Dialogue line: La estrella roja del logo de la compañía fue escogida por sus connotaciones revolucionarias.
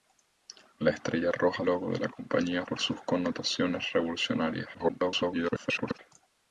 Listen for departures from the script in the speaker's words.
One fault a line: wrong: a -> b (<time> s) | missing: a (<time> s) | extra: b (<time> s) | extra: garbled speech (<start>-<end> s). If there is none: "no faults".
missing: del (1.6 s)
missing: fue escogida (2.6 s)
extra: garbled speech (4.7-6.0 s)